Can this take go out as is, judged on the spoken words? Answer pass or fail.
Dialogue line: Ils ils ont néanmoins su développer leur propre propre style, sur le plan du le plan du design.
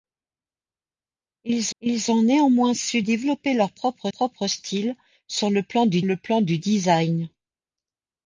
pass